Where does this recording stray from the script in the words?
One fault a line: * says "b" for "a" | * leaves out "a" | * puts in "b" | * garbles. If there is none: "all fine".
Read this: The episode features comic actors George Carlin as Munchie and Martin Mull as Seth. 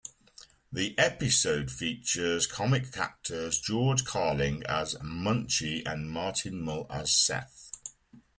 all fine